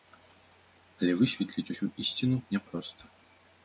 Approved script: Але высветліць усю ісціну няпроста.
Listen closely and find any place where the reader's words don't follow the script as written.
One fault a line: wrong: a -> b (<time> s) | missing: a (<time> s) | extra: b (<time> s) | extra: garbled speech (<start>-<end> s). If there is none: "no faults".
no faults